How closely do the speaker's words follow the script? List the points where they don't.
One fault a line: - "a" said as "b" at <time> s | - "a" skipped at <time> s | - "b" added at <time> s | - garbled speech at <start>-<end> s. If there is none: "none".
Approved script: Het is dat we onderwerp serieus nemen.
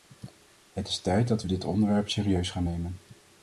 - "tijd" added at 1.0 s
- "dit" added at 1.5 s
- "gaan" added at 2.5 s